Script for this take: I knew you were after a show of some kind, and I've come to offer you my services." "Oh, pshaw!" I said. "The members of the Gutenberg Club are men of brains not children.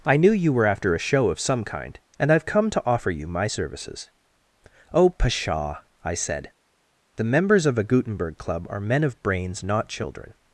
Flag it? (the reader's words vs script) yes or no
yes